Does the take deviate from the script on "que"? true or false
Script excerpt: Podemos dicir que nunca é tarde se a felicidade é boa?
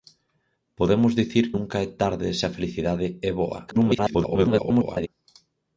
true